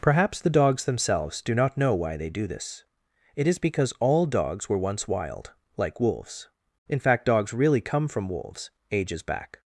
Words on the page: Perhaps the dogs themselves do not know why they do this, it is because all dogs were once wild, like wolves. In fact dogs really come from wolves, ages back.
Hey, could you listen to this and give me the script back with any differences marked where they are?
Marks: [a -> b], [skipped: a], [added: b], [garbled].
Perhaps the dogs themselves do not know why they do this, it is because all dogs were once wild, like wolves. In fact dogs really come from wolves, ages back.